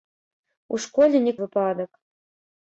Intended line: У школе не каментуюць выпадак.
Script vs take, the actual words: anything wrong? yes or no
yes